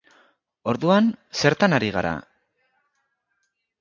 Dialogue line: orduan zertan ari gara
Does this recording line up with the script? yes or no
yes